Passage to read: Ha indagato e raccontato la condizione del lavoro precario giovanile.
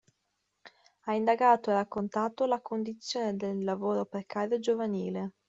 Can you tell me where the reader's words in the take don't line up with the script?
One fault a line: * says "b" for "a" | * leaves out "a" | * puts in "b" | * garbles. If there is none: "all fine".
all fine